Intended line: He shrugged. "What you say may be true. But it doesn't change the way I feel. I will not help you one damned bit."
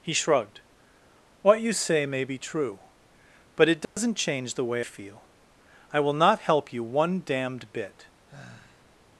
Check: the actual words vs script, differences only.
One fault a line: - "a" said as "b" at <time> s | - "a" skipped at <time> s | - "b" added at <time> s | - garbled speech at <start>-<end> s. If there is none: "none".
- "I" skipped at 4.8 s